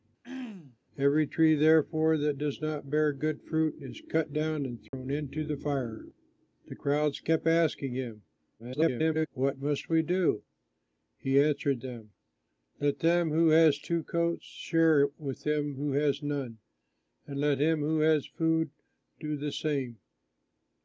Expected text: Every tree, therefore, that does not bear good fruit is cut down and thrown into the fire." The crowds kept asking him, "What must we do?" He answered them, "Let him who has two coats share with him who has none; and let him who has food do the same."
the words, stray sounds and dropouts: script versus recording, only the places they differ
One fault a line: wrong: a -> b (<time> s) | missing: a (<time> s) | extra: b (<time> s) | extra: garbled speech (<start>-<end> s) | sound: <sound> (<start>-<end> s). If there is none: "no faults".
sound: throat clearing (0.2-0.8 s)
sound: dropout (4.9-4.9 s)
extra: garbled speech (8.6-9.3 s)